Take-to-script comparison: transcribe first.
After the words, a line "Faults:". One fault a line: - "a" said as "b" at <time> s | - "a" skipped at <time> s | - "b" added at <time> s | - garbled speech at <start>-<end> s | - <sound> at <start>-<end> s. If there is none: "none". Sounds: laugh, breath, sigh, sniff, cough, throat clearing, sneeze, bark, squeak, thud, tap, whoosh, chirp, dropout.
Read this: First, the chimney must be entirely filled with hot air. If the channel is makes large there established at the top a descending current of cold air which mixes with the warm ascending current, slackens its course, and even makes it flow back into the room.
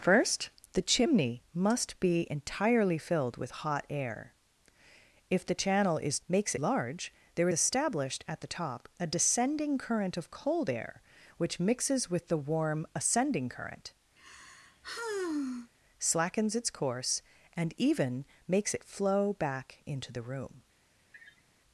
First, the chimney must be entirely filled with hot air. If the channel is makes large there established at the top a descending current of cold air which mixes with the warm ascending current, slackens its course, and even makes it flow back into the room.
Faults:
- sigh at 14.2-15.7 s
- sniff at 21.1-21.4 s